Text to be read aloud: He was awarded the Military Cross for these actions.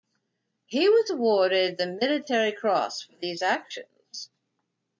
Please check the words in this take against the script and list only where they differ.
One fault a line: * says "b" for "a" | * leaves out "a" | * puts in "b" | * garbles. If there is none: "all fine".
all fine